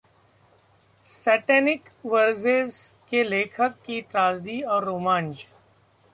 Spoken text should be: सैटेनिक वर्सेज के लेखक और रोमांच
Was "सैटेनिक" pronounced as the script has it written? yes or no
yes